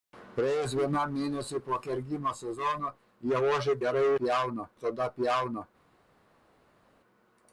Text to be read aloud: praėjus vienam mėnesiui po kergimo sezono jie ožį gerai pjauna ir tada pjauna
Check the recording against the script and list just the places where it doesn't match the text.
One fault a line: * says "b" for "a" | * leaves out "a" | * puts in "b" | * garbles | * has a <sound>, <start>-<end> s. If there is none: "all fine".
all fine